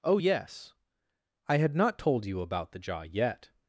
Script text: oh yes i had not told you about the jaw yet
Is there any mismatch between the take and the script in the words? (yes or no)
no